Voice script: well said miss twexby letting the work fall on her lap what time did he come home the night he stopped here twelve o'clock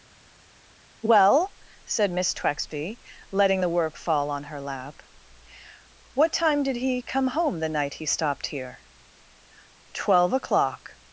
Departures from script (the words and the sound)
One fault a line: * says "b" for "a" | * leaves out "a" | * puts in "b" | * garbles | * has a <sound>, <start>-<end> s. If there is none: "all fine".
all fine